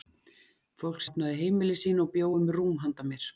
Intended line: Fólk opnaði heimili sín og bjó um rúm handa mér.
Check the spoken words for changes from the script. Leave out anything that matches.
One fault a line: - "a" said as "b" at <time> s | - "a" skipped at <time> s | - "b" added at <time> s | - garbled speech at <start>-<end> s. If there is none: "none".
none